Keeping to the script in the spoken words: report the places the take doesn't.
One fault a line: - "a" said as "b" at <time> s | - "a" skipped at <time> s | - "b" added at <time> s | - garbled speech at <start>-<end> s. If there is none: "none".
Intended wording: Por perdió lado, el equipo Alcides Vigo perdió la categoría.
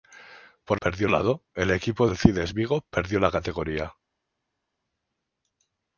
none